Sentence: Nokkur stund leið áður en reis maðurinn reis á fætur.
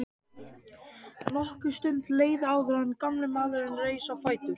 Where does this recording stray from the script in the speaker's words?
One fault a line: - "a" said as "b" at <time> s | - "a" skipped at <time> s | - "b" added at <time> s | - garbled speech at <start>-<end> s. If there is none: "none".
- "reis" said as "gamli" at 3.0 s